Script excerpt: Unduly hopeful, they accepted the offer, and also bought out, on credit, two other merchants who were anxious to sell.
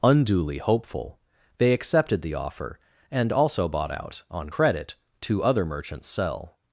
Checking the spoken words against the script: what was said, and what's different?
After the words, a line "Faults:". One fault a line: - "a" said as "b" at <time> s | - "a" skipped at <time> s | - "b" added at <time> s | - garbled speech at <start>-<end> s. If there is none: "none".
Unduly hopeful, they accepted the offer, and also bought out, on credit, two other merchants sell.
Faults:
- "who were anxious to" skipped at 6.1 s